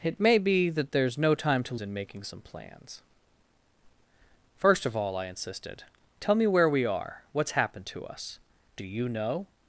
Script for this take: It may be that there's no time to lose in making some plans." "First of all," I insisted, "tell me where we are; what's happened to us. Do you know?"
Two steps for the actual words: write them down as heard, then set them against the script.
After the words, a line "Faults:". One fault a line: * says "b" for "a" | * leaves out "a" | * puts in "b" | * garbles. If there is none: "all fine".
It may be that there's no time to in making some plans." "First of all," I insisted, "tell me where we are; what's happened to us. Do you know?"
Faults:
* leaves out "lose"